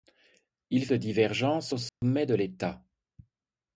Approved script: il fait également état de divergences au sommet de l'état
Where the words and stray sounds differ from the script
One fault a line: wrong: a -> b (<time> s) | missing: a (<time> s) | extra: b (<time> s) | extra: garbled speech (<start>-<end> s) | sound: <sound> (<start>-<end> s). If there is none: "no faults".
missing: fait également état (0.9 s)
sound: dropout (1.9-2.0 s)